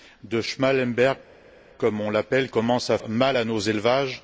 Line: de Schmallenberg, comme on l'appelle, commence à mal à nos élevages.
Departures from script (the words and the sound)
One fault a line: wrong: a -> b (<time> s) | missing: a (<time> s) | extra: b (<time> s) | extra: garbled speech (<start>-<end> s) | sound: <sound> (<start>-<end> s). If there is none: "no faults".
no faults